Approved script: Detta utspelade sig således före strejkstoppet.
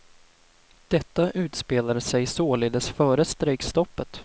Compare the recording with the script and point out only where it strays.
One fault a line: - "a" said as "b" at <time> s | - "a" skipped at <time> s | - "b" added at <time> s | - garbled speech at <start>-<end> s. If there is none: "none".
none